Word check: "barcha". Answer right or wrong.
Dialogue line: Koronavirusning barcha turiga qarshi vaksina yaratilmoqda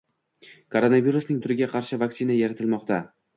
wrong